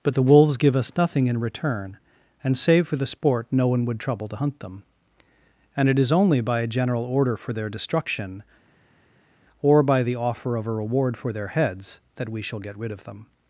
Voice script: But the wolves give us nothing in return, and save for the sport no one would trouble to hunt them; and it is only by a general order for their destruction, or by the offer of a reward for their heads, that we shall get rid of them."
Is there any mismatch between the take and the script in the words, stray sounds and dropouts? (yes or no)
no